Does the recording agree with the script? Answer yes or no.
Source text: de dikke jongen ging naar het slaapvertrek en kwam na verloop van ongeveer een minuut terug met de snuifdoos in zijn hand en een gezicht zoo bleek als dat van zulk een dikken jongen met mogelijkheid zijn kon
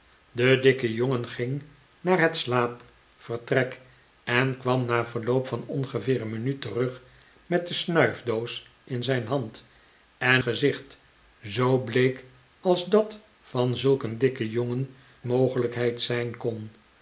no